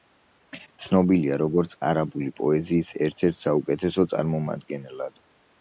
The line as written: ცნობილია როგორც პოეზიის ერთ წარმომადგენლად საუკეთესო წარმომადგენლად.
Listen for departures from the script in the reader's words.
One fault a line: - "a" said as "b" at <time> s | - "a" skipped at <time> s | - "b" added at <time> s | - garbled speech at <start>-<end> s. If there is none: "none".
- "არაბული" added at 1.9 s
- "წარმომადგენლად" said as "ერთ" at 3.3 s